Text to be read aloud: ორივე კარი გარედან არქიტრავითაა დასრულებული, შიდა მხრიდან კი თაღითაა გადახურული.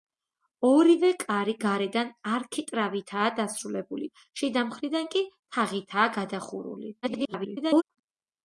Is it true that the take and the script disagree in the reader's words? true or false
true